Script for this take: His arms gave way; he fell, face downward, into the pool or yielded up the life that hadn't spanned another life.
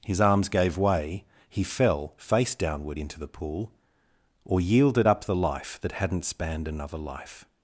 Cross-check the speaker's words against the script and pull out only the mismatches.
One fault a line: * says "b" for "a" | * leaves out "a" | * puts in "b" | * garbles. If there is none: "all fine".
all fine